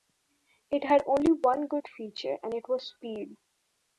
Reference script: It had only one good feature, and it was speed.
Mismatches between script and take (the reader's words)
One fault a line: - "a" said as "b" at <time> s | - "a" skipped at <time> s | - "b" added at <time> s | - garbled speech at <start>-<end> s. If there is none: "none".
none